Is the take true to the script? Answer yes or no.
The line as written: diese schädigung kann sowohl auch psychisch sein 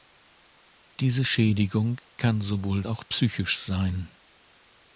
yes